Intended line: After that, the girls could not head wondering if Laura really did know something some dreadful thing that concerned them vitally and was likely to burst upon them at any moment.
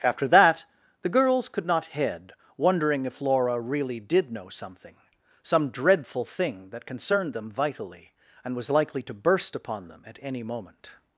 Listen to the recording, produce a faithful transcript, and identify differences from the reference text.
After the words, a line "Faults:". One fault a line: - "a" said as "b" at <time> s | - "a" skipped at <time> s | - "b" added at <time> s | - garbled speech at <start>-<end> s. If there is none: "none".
After that, the girls could not head wondering if Laura really did know something some dreadful thing that concerned them vitally and was likely to burst upon them at any moment.
Faults:
none